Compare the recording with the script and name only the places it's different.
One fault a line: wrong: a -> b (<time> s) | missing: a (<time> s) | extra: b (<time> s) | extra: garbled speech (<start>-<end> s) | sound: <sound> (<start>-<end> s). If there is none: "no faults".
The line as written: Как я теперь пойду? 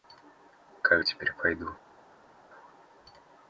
no faults